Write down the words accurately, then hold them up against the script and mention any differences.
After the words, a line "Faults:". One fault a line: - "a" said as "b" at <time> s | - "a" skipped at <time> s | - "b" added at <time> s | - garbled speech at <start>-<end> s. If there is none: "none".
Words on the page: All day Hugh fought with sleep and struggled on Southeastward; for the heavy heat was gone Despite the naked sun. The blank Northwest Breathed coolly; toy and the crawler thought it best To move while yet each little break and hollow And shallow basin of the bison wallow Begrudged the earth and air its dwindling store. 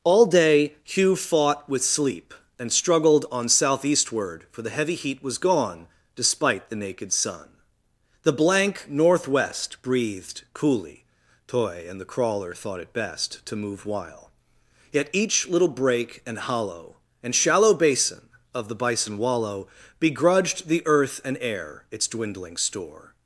All day Hugh fought with sleep and struggled on Southeastward; for the heavy heat was gone Despite the naked sun. The blank Northwest Breathed coolly; toy and the crawler thought it best To move while yet each little break and hollow And shallow basin of the bison wallow Begrudged the earth and air its dwindling store.
Faults:
none